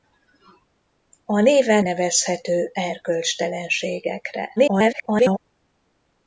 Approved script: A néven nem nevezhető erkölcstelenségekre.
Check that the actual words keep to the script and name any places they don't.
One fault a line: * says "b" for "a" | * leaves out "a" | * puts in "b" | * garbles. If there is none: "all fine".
* leaves out "nem"
* garbles